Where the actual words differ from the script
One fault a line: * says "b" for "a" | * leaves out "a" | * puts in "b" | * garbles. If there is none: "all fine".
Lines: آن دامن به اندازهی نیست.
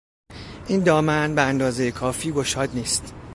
* says "این" for "آن"
* puts in "کافی گشاد"